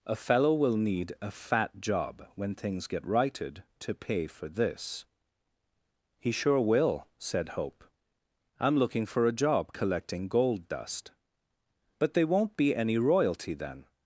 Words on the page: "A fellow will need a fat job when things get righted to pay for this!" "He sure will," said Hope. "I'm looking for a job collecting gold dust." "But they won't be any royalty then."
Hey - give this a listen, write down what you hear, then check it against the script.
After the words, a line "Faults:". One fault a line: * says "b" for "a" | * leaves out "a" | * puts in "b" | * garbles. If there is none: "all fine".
"A fellow will need a fat job when things get righted to pay for this!" "He sure will," said Hope. "I'm looking for a job collecting gold dust." "But they won't be any royalty then."
Faults:
all fine